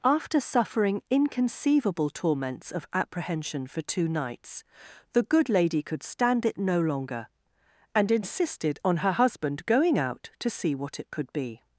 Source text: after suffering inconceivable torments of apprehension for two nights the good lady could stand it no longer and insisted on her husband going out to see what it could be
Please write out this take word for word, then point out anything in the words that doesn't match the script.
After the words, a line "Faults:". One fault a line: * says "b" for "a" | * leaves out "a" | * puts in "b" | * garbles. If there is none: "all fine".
after suffering inconceivable torments of apprehension for two nights the good lady could stand it no longer and insisted on her husband going out to see what it could be
Faults:
all fine